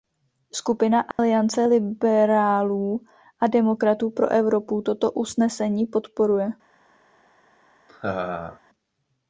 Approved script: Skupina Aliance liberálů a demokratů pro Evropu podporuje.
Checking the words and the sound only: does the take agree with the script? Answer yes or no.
no